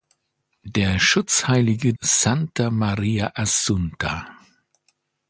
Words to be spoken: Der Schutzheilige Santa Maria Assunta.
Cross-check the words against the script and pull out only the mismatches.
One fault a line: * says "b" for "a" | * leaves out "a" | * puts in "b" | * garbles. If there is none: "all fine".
all fine